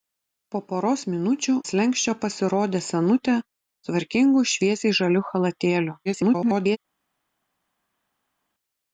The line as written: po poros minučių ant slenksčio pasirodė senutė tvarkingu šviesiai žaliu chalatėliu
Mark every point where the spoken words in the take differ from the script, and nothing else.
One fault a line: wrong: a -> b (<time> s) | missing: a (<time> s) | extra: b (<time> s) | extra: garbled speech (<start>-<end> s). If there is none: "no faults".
missing: ant (1.5 s)
extra: garbled speech (6.1-6.8 s)